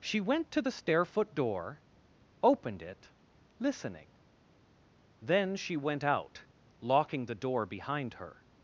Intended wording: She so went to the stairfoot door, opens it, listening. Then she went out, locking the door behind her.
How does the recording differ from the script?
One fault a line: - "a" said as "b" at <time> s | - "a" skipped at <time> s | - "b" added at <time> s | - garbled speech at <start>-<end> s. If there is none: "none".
- "so" skipped at 0.2 s
- "opens" said as "opened" at 2.4 s